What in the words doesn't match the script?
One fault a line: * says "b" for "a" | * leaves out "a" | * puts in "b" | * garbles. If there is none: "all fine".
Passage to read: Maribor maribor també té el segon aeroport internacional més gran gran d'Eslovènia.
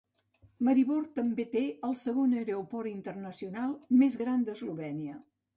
* leaves out "maribor"
* leaves out "gran"